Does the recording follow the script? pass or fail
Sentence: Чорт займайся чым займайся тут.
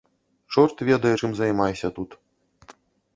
fail